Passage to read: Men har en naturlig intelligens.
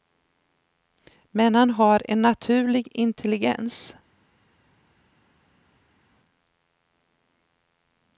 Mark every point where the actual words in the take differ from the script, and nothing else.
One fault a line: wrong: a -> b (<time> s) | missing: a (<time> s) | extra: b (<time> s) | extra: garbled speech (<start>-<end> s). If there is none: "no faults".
extra: han (1.6 s)